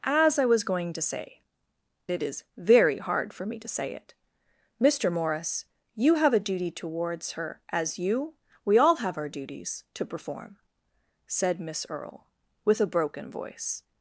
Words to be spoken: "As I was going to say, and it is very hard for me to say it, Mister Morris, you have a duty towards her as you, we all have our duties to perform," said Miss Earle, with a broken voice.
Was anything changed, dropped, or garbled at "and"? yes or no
yes